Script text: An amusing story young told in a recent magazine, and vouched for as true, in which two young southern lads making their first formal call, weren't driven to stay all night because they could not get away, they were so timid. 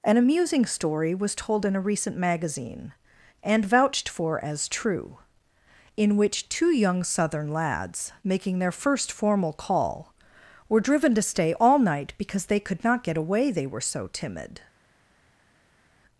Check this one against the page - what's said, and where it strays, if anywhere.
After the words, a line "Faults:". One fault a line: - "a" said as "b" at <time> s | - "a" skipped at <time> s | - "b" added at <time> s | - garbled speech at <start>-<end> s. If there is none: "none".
An amusing story was told in a recent magazine, and vouched for as true, in which two young southern lads making their first formal call, were driven to stay all night because they could not get away, they were so timid.
Faults:
- "young" said as "was" at 1.1 s
- "weren't" said as "were" at 10.7 s